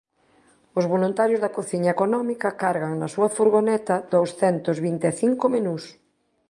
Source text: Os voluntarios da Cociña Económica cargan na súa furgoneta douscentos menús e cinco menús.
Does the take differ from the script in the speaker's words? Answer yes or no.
yes